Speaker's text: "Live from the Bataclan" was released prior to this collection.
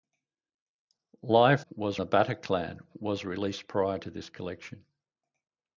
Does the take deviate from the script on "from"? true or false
true